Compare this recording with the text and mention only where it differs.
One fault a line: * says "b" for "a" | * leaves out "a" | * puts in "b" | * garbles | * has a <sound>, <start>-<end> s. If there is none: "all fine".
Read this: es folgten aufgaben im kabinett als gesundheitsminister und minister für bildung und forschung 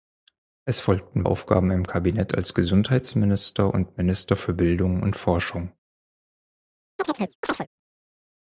* has a chirp, 7.0-7.7 s